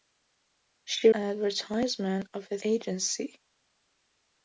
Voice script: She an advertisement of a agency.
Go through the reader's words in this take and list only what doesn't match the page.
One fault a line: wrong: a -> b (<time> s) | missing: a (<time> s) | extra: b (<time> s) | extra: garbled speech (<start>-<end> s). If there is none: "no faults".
no faults